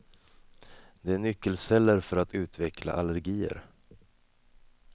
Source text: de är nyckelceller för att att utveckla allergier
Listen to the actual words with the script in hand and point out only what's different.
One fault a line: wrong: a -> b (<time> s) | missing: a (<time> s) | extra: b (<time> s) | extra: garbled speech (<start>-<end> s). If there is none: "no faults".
missing: att (2.3 s)